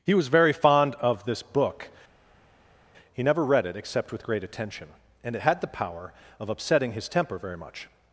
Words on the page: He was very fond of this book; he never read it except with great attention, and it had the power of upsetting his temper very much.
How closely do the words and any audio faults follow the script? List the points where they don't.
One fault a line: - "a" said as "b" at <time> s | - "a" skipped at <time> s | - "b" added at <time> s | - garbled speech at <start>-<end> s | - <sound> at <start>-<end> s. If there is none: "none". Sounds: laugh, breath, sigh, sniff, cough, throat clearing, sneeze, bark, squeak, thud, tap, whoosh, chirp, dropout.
none